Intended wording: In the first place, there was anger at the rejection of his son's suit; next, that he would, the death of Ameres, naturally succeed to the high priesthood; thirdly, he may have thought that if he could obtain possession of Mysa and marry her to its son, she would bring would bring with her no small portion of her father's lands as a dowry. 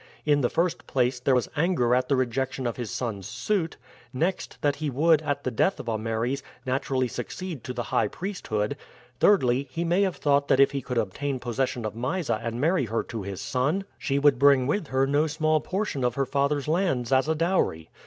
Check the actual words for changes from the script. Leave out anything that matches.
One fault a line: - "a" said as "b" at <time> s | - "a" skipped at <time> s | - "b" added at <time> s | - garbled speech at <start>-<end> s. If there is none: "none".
- "at" added at 5.2 s
- "its" said as "his" at 13.2 s
- "would bring" skipped at 14.7 s